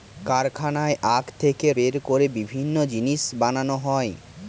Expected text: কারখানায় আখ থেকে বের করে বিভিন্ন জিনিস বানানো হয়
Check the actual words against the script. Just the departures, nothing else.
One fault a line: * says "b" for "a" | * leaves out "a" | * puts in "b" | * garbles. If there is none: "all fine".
all fine